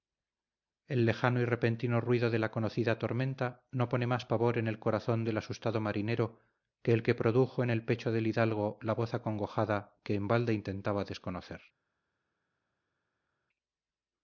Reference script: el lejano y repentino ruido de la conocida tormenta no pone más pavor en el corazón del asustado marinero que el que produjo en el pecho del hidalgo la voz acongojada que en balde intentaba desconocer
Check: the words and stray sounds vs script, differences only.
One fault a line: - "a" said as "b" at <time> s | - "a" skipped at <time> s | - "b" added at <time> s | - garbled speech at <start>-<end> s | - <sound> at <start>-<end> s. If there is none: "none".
none